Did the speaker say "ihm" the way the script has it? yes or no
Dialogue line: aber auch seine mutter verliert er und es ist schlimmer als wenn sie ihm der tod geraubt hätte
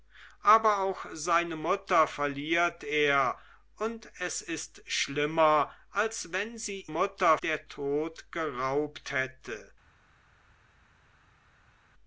no